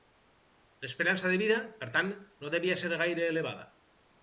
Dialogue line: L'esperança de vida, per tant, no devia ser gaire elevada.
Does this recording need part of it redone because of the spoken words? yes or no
no